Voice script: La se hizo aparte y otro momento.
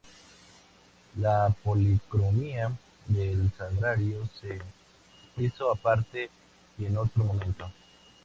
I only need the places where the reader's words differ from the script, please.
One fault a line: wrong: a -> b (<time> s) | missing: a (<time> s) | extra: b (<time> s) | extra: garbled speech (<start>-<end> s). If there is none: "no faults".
extra: policromía del sagrario (1.6 s)
extra: en (6.8 s)